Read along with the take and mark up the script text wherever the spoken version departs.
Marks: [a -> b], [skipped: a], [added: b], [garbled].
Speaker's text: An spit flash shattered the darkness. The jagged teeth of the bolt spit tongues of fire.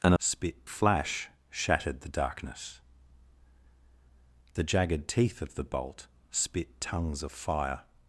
An spit flash shattered the darkness. The jagged teeth of the bolt spit tongues of fire.